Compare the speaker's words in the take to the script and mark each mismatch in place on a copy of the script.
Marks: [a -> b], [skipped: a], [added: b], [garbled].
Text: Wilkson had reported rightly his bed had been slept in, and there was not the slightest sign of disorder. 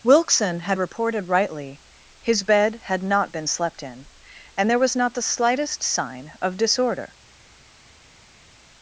Wilkson had reported rightly his bed had [added: not] been slept in, and there was not the slightest sign of disorder.